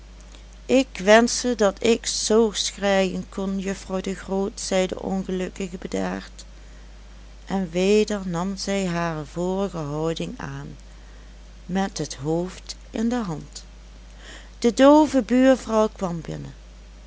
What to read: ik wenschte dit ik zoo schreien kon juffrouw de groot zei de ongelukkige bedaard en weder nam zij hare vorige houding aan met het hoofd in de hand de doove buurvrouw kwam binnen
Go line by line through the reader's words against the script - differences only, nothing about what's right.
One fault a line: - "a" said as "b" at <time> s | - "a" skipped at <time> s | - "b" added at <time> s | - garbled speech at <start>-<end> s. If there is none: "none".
- "dit" said as "dat" at 1.6 s